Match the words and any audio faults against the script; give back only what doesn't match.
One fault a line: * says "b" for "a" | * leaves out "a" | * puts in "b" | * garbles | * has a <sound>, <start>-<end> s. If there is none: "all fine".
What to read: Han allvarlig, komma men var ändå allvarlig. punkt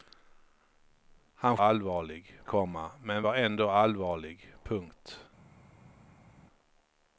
all fine